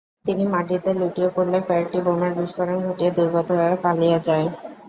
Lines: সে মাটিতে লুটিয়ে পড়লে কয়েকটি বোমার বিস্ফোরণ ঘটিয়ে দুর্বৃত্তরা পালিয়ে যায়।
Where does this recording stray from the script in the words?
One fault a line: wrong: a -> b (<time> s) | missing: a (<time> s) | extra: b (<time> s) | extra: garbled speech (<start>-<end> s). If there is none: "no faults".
wrong: সে -> তিনি (0.2 s)